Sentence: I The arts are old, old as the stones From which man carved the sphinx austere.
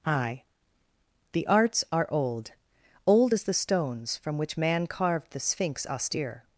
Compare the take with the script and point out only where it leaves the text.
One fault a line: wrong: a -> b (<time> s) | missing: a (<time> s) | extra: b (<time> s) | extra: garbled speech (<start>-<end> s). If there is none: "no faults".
no faults